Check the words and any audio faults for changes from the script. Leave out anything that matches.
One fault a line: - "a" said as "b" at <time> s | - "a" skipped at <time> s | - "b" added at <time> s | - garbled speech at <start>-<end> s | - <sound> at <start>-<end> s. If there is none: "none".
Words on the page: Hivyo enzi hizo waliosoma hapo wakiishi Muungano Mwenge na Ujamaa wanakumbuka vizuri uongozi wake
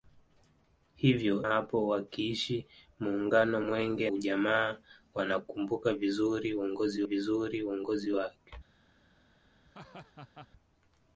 - "enzi hizo waliosoma" skipped at 1.4 s
- "na" skipped at 4.1 s
- "vizuri uongozi" added at 7.0 s
- laugh at 9.7-10.5 s